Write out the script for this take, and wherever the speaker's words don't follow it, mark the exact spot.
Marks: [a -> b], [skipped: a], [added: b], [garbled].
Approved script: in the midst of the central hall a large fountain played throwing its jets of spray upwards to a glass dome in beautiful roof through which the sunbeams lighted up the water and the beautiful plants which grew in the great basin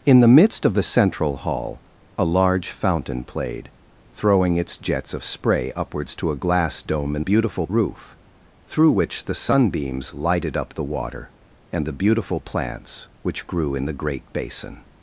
in the midst of the central hall a large fountain played throwing its jets of spray upwards to a glass dome in beautiful roof through which the sunbeams lighted up the water and the beautiful plants which grew in the great basin